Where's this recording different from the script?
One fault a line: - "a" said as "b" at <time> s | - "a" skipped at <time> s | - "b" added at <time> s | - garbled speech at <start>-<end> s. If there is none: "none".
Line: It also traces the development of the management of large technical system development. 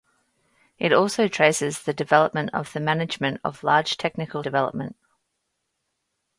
- "system" skipped at 4.4 s